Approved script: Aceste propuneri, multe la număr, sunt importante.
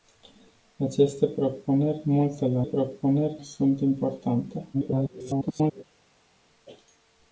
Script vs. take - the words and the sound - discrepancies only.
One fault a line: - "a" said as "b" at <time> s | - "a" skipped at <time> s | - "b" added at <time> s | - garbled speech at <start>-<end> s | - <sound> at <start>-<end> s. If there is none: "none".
- "număr" said as "propuneri" at 2.6 s
- garbled speech at 4.7-5.8 s